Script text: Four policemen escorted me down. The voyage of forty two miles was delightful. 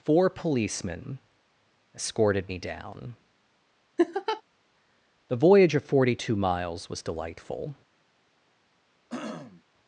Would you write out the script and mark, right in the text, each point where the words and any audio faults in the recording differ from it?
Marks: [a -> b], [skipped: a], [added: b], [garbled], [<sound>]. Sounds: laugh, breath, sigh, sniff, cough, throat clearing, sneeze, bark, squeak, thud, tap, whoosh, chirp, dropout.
Four policemen escorted me down. [laugh] The voyage of forty two miles was delightful. [throat clearing]